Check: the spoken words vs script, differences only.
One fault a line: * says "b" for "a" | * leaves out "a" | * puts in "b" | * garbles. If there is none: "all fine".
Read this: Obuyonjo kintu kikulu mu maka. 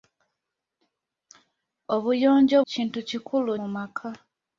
all fine